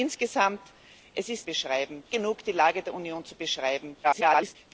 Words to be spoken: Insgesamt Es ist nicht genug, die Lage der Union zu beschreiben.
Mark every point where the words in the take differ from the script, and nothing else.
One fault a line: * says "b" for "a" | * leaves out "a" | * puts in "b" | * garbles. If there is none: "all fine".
* says "beschreiben" for "nicht"
* garbles